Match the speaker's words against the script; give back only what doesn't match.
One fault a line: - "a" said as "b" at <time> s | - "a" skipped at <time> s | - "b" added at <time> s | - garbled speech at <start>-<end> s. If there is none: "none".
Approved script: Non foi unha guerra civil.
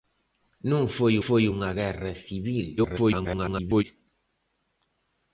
- "foi" added at 1.2 s
- garbled speech at 2.8-3.8 s